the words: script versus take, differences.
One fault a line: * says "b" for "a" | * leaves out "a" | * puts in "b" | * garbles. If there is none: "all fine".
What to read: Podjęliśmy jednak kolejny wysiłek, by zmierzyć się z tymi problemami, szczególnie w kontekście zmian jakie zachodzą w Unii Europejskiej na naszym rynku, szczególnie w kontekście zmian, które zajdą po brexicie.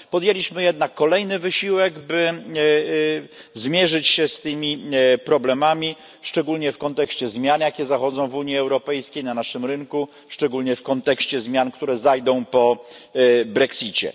all fine